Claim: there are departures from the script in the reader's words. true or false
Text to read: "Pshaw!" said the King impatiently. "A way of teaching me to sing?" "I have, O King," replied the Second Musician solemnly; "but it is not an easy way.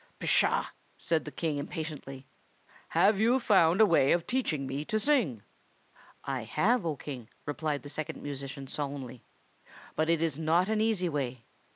true